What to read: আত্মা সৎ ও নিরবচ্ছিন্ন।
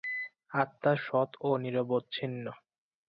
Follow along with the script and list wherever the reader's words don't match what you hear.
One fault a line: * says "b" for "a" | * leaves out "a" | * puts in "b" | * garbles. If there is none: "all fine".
all fine